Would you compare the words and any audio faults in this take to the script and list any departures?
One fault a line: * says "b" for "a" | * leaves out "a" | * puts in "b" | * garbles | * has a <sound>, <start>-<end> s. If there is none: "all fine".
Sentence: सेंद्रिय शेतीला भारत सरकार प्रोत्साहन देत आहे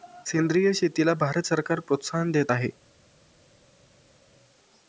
all fine